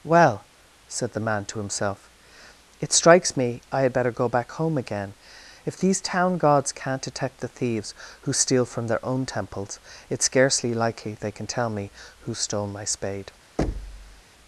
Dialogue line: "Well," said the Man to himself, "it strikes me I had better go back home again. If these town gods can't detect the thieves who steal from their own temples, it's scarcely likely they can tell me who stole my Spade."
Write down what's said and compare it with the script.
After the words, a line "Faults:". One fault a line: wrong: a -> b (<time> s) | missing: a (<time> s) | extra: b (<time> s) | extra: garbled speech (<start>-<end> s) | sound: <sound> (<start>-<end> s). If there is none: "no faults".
"Well," said the Man to himself, "it strikes me I had better go back home again. If these town gods can't detect the thieves who steal from their own temples, it's scarcely likely they can tell me who stole my Spade."
Faults:
sound: thud (13.6-14.2 s)